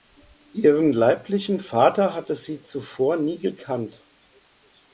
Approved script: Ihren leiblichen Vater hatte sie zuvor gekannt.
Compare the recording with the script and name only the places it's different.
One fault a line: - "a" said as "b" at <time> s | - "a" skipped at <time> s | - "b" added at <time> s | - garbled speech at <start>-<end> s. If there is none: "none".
- "nie" added at 3.2 s